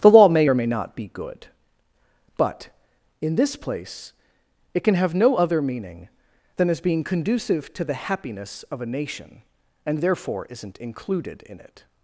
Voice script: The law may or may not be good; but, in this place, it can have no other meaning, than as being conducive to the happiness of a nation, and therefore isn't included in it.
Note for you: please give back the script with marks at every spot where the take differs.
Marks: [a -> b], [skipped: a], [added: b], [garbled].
The law may or may not be good; but, in this place, it can have no other meaning, than as being conducive to the happiness of a nation, and therefore isn't included in it.